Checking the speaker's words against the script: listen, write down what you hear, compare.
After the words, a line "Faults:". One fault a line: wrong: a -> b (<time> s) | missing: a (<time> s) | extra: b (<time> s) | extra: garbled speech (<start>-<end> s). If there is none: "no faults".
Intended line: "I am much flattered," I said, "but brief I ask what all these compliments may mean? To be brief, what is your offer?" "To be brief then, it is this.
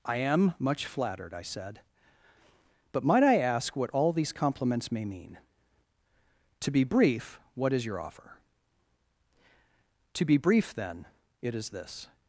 "I am much flattered," I said, "but might I ask what all these compliments may mean? To be brief, what is your offer?" "To be brief then, it is this.
Faults:
wrong: brief -> might (3.0 s)